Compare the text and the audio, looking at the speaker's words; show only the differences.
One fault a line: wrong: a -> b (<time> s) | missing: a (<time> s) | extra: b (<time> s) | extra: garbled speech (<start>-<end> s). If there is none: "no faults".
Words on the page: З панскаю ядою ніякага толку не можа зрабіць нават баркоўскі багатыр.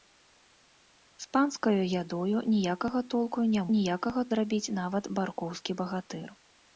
wrong: можа -> ніякага (3.8 s)